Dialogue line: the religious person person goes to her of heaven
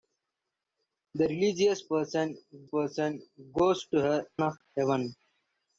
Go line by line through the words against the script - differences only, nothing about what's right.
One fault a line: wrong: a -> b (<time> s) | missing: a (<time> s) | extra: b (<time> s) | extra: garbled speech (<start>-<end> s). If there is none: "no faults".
no faults